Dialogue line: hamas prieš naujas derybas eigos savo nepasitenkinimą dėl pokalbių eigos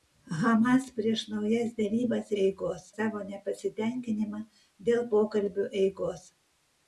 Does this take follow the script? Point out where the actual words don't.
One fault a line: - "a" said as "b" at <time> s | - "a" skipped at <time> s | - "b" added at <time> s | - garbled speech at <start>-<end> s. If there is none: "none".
none